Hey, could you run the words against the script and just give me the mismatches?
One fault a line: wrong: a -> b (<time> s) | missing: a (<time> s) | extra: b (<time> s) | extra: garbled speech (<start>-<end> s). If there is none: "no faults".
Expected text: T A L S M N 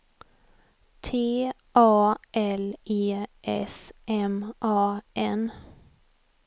extra: E (2.8 s)
extra: A (4.6 s)